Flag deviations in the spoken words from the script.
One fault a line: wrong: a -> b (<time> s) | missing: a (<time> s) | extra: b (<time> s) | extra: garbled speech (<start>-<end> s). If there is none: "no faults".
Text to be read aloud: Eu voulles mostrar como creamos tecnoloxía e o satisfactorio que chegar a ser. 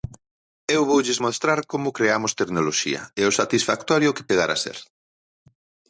no faults